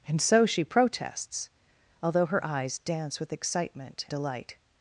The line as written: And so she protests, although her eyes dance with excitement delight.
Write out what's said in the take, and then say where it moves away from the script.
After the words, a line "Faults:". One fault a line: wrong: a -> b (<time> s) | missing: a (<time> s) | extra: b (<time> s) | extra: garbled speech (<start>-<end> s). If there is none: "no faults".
And so she protests, although her eyes dance with excitement delight.
Faults:
no faults